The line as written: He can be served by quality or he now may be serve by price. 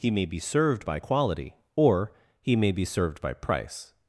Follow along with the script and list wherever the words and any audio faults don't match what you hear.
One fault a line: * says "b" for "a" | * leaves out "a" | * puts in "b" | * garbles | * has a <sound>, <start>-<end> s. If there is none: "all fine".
* says "may" for "can"
* leaves out "now"
* says "served" for "serve"